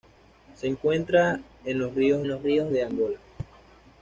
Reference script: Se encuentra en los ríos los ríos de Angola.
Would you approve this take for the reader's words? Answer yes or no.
yes